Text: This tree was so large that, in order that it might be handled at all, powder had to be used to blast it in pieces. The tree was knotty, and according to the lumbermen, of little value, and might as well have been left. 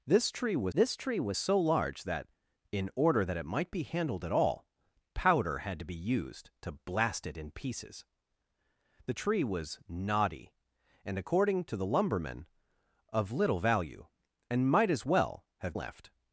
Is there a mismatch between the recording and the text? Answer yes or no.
yes